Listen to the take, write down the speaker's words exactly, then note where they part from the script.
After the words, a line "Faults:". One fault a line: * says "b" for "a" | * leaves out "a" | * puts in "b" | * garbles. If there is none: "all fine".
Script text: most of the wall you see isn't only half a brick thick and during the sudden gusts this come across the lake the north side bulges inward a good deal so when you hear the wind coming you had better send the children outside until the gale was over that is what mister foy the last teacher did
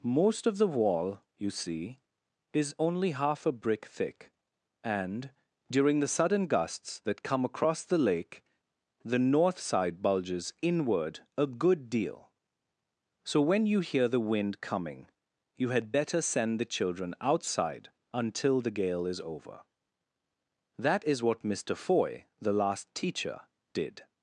most of the wall you see is only half a brick thick and during the sudden gusts that come across the lake the north side bulges inward a good deal so when you hear the wind coming you had better send the children outside until the gale is over that is what mister foy the last teacher did
Faults:
* says "is" for "isn't"
* says "that" for "this"
* says "is" for "was"